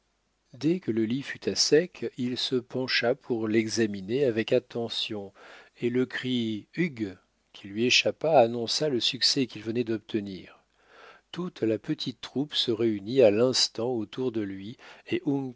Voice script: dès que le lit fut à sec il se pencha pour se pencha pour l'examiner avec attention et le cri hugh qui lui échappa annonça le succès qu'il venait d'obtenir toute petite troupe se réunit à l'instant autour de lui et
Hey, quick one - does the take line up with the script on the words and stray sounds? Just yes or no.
no